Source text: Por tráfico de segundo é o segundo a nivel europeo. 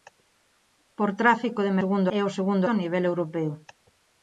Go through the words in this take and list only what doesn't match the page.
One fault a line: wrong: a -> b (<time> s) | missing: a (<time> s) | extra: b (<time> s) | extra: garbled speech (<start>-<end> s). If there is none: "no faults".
no faults